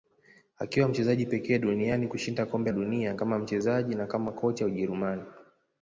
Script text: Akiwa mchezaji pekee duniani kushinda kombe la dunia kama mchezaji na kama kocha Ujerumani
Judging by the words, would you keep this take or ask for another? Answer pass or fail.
fail